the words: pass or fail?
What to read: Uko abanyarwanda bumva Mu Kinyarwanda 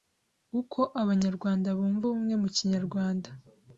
fail